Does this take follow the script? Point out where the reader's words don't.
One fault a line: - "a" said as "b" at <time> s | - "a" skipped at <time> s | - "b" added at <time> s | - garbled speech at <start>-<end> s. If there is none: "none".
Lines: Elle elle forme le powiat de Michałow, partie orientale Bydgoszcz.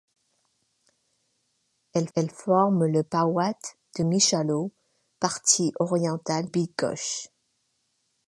none